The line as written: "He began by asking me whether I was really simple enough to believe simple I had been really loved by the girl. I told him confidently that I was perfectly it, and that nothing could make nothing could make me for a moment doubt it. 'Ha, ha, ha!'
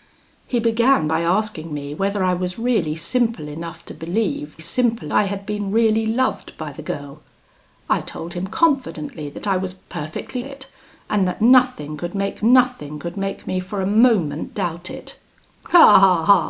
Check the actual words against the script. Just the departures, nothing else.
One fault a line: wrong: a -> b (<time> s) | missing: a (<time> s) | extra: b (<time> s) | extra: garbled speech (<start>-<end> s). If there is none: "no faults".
no faults